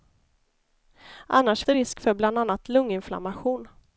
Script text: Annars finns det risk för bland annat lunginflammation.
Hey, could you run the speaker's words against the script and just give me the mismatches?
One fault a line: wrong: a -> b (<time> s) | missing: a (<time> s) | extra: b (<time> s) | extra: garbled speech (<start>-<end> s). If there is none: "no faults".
missing: finns (1.6 s)